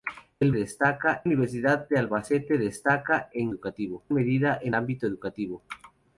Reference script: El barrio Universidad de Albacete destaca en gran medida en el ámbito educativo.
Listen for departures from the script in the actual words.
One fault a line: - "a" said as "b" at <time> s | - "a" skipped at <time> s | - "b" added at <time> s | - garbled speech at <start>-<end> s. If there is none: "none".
- "barrio" said as "destaca" at 0.5 s
- "gran" said as "educativo" at 3.5 s
- "el" skipped at 4.7 s